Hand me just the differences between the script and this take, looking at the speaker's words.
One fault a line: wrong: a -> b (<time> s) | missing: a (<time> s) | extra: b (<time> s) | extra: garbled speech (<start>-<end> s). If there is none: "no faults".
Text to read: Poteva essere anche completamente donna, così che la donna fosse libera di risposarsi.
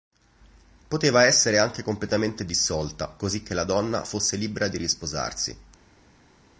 wrong: donna -> dissolta (2.4 s)